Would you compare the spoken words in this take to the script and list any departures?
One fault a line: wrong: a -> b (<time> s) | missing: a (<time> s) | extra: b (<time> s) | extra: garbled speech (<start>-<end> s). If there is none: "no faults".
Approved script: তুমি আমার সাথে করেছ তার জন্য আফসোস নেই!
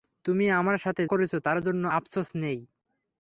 no faults